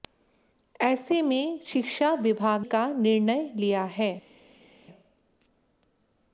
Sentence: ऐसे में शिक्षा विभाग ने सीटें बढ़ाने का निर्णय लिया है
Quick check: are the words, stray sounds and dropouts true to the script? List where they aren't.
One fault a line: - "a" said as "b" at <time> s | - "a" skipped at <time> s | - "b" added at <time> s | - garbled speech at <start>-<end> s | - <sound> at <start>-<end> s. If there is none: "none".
- "ने सीटें बढ़ाने" skipped at 2.6 s